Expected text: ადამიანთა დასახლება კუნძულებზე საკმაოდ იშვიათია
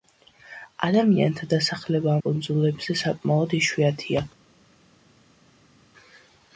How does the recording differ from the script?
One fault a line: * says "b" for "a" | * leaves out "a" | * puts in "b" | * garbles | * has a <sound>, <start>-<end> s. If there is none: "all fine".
all fine